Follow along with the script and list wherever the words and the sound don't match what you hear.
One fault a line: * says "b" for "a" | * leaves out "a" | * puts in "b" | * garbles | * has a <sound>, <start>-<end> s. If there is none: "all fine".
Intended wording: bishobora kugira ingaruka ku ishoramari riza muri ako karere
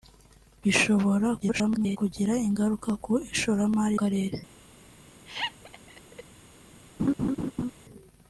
* garbles
* leaves out "riza muri ako"
* has a laugh, 5.3-6.2 s
* has a laugh, 7.0-7.7 s